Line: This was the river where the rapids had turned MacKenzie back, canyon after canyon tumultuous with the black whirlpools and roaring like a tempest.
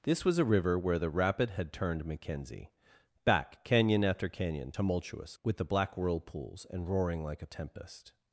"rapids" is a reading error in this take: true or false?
true